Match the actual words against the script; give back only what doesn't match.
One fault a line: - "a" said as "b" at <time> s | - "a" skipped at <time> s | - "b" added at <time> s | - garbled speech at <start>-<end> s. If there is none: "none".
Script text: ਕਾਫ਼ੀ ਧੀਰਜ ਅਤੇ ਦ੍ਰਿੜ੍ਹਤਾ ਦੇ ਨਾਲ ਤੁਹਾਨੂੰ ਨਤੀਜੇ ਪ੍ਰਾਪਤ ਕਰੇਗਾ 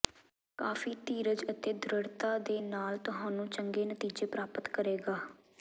- "ਚੰਗੇ" added at 3.5 s